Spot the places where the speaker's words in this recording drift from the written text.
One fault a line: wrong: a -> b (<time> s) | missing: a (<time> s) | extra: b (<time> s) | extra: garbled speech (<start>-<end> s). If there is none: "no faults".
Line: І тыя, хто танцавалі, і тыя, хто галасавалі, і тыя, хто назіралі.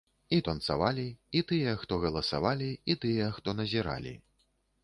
missing: тыя хто (0.4 s)